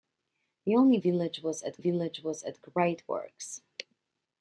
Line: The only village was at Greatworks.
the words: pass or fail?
fail